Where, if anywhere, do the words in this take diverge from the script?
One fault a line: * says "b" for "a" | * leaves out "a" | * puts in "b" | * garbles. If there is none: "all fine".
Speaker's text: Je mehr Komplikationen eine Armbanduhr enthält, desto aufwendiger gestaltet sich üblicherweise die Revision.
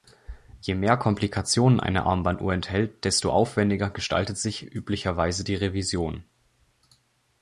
all fine